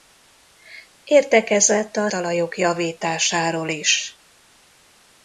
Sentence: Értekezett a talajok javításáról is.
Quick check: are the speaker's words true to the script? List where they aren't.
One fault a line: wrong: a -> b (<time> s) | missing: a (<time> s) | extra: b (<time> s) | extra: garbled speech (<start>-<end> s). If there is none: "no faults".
no faults